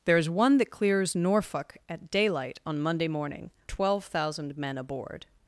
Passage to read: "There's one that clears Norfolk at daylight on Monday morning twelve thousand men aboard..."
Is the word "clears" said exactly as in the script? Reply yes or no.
yes